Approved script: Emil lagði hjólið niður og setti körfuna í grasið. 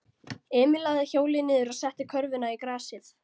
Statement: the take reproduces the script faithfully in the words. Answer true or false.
true